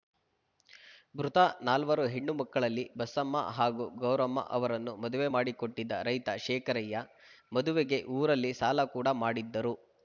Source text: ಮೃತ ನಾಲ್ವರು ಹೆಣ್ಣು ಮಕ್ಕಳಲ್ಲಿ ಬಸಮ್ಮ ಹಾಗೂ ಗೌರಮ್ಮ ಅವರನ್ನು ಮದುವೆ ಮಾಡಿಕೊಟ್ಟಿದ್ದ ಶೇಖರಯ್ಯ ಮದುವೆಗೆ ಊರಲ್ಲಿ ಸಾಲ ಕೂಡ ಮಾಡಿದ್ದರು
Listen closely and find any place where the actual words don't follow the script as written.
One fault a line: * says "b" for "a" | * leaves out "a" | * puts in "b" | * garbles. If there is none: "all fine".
* puts in "ರೈತ"